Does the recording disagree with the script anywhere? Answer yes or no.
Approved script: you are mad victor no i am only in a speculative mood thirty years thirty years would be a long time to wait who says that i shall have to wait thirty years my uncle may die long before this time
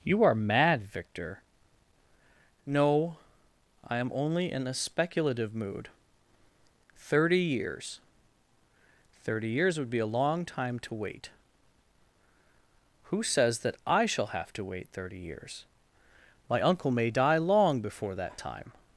yes